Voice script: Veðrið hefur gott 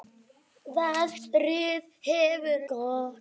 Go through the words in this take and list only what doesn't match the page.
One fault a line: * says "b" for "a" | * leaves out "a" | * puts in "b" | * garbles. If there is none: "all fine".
all fine